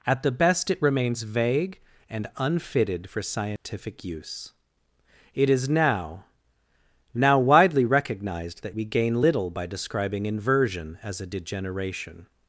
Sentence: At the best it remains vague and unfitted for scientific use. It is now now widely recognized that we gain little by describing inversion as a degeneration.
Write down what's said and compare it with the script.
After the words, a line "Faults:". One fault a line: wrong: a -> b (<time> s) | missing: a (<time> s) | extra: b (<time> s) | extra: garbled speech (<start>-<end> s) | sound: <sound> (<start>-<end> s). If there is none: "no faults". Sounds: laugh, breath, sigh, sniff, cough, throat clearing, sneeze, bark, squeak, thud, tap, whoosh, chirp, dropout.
At the best it remains vague and unfitted for scientific use. It is now now widely recognized that we gain little by describing inversion as a degeneration.
Faults:
sound: dropout (3.6-3.6 s)